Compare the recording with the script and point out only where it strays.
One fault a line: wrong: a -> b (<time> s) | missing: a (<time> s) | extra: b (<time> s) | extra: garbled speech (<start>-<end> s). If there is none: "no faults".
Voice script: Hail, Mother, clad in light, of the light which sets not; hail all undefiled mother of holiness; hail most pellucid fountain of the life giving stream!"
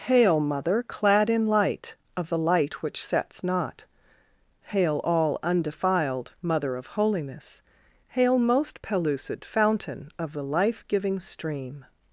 no faults